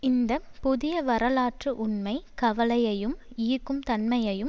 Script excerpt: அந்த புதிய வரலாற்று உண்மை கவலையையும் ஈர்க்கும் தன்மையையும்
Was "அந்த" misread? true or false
true